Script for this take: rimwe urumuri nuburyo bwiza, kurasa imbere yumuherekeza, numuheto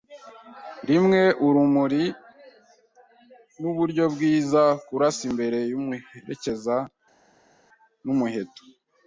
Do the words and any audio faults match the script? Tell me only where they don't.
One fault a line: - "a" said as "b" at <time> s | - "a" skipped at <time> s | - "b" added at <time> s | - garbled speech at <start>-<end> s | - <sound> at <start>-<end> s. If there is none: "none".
none